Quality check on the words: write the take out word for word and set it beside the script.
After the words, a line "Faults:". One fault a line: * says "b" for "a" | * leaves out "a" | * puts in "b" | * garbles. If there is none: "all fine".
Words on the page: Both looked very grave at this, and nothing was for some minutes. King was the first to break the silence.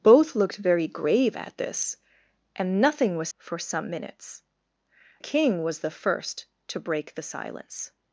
Both looked very grave at this, and nothing was for some minutes. King was the first to break the silence.
Faults:
all fine